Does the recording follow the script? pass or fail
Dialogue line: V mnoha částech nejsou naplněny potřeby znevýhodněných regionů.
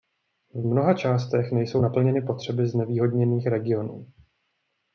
pass